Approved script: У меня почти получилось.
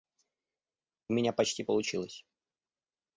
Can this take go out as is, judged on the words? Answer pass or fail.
pass